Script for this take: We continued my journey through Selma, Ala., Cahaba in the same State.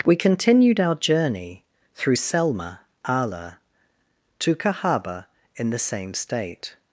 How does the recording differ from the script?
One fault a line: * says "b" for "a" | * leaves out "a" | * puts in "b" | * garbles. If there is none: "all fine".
* says "our" for "my"
* puts in "to"